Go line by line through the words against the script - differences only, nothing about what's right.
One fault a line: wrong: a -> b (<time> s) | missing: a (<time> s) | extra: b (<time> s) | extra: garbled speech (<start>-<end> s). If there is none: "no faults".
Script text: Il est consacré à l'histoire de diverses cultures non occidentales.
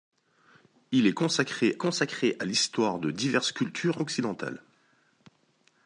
extra: consacré (1.8 s)
missing: non (4.0 s)